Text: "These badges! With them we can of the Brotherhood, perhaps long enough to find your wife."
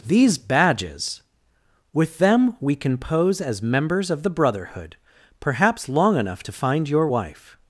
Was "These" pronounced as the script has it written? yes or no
yes